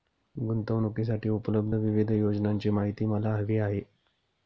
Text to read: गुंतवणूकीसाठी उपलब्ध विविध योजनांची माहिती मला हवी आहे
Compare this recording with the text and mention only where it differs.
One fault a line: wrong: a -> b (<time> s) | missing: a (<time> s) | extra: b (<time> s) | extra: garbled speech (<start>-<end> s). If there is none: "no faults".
no faults